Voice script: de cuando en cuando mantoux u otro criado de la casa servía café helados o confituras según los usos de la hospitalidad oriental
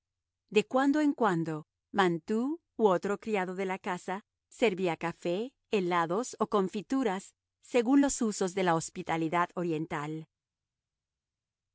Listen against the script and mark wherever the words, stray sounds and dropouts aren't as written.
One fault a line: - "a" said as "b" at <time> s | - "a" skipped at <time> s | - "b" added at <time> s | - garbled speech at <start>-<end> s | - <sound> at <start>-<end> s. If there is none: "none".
none